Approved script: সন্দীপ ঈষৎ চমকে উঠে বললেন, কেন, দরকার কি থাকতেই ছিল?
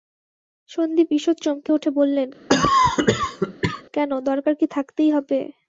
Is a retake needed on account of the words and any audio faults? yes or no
yes